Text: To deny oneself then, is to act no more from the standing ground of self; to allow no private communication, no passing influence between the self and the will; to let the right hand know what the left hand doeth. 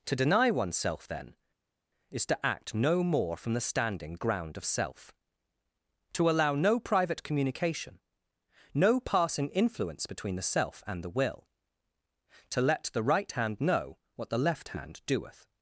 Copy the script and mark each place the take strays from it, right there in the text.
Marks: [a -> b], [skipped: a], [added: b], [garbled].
To deny oneself then, is to act no more from the standing ground of self; to allow no private communication, no passing influence between the self and the will; to let the right hand know what the left hand doeth.